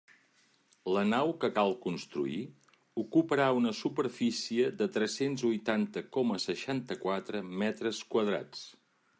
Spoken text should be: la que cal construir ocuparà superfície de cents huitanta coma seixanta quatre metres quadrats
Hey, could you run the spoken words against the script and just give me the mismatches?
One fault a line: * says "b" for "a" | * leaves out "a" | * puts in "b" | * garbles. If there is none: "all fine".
* puts in "nau"
* puts in "una"
* puts in "tres"